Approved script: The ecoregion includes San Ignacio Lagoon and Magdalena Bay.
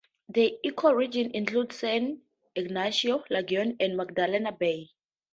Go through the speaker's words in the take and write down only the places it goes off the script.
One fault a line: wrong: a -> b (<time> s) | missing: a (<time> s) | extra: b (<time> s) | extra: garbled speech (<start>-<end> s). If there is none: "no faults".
no faults